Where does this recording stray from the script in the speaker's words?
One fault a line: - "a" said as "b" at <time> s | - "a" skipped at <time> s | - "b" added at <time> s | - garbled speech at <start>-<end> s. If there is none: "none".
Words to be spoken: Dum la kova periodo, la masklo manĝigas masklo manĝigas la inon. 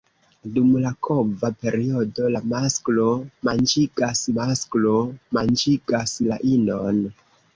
none